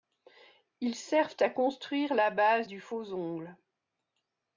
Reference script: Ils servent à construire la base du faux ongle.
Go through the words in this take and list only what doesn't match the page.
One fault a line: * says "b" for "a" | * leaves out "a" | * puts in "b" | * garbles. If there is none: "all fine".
all fine